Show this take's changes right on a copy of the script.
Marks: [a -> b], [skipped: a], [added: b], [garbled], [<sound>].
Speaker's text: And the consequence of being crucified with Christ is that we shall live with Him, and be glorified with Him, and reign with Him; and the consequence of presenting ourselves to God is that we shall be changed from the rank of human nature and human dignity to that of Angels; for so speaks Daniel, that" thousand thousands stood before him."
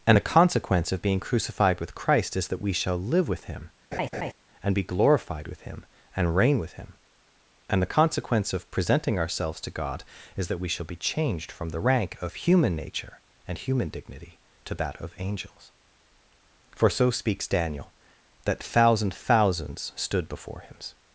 And the consequence of being crucified with Christ is that we shall live with Him, [laugh] and be glorified with Him, and reign with Him; and the consequence of presenting ourselves to God is that we shall be changed from the rank of human nature and human dignity to that of Angels; for so speaks Daniel, that" thousand thousands stood before him."